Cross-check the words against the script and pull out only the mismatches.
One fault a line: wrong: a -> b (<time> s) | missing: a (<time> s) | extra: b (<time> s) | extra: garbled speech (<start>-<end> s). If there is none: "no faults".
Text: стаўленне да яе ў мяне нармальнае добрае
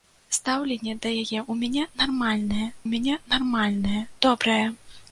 extra: мяне нармальнае (2.9 s)